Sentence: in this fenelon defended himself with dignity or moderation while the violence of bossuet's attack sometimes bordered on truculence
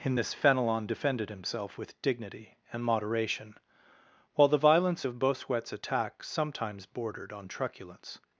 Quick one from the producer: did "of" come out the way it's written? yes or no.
yes